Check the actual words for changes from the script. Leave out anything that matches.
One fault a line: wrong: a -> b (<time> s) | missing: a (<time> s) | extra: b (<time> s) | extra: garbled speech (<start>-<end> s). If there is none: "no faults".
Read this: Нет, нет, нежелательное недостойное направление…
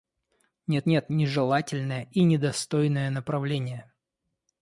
extra: и (2.1 s)